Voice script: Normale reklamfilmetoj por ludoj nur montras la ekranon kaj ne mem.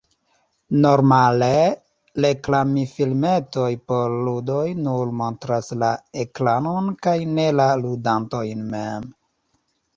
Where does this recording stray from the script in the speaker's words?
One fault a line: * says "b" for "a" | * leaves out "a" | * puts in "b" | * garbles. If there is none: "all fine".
* puts in "la ludantojn"